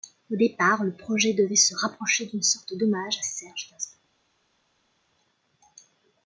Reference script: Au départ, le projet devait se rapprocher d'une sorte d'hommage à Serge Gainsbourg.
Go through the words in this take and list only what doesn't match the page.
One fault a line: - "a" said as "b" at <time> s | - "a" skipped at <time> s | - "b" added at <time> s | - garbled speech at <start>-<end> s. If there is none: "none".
none